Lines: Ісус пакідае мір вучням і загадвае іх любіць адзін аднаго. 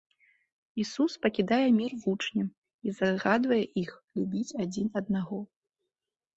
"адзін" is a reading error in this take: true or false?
false